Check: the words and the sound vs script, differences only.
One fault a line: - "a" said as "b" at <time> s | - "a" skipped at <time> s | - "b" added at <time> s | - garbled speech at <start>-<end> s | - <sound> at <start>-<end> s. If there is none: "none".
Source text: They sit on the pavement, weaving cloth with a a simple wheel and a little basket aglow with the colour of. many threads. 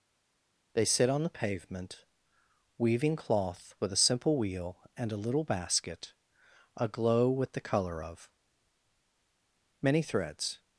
- "a" skipped at 4.0 s